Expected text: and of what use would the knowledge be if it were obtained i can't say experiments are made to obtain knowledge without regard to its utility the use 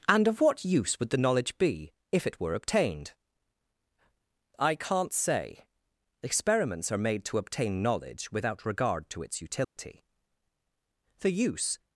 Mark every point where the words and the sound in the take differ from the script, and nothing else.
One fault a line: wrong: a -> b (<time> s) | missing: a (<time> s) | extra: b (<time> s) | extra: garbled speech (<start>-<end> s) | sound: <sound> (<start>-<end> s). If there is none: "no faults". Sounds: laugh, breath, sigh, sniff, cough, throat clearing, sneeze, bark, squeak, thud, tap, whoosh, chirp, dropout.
sound: dropout (9.6-9.8 s)